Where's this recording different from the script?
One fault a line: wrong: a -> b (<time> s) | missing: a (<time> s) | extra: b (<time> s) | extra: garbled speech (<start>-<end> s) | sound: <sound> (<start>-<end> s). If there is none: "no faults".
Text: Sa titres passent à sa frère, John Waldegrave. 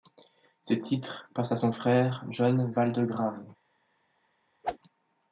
wrong: Sa -> Ses (0.6 s)
wrong: sa -> son (1.5 s)
sound: whoosh (4.6-4.8 s)